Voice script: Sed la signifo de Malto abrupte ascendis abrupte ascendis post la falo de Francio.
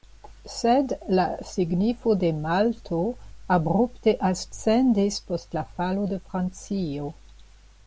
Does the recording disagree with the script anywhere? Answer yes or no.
yes